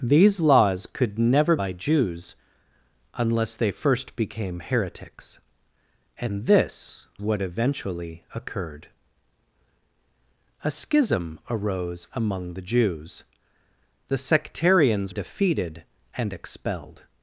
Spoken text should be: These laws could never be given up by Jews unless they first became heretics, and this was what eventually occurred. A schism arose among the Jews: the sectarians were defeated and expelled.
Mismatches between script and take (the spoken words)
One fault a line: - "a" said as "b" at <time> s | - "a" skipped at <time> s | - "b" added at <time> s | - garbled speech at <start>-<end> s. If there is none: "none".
- "be given up" skipped at 1.6 s
- "was" skipped at 7.1 s
- "were" skipped at 15.1 s